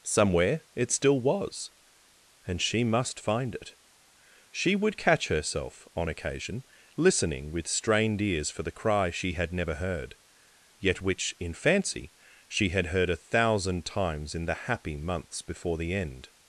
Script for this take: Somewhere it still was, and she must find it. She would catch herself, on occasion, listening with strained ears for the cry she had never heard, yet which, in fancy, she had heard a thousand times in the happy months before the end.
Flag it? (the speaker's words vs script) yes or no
no